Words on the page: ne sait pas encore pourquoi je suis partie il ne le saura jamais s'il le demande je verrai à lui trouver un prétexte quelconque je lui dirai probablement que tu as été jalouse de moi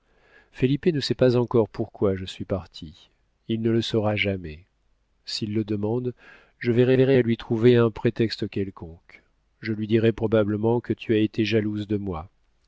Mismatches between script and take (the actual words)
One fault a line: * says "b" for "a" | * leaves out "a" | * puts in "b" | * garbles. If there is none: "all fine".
* puts in "verrai"